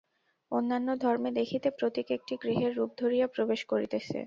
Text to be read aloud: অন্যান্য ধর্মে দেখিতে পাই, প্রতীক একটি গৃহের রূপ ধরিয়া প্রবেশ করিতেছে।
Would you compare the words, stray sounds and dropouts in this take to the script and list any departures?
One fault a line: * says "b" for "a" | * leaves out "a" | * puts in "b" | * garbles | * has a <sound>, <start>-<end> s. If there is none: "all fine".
* leaves out "পাই"